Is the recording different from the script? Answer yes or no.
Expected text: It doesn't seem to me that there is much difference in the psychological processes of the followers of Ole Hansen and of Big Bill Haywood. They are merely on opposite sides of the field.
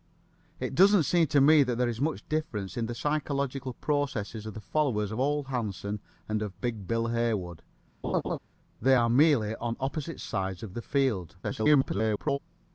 yes